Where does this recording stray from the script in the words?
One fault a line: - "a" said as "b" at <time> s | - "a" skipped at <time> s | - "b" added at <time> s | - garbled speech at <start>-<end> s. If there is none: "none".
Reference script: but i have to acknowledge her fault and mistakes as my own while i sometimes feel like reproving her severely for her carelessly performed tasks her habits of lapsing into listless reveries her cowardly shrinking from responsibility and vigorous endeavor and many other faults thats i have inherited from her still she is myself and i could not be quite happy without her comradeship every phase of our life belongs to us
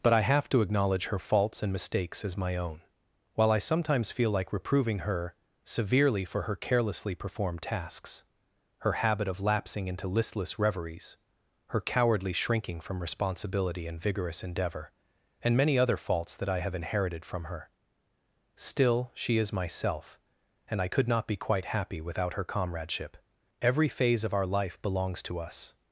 - "fault" said as "faults" at 1.2 s
- "habits" said as "habit" at 8.9 s
- "thats" said as "that" at 16.3 s